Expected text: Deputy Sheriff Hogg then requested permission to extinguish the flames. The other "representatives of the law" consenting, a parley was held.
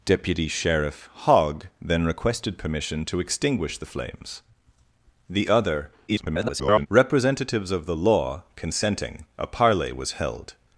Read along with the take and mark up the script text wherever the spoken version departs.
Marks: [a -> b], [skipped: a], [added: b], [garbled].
Deputy Sheriff Hogg then requested permission to extinguish the flames. The other [garbled] "representatives of the law" consenting, a parley was held.